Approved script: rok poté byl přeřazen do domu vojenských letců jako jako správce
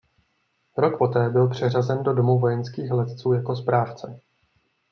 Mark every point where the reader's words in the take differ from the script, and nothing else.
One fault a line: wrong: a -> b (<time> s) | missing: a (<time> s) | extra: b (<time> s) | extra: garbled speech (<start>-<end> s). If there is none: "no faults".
missing: jako (3.5 s)